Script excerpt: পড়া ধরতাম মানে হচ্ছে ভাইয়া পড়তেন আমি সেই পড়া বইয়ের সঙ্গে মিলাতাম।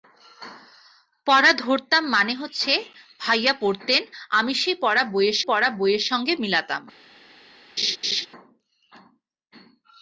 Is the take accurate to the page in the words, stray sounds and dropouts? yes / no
no